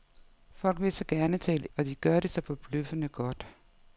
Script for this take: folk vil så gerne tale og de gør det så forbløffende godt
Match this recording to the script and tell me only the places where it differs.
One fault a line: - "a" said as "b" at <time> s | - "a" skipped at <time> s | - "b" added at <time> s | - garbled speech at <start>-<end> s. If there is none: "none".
none